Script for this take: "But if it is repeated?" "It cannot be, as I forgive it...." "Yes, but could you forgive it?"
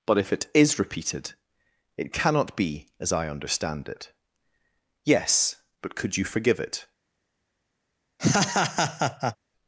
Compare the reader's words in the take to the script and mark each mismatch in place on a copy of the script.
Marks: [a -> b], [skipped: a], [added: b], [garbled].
"But if it is repeated?" "It cannot be, as I [forgive -> understand] it...." "Yes, but could you forgive it?"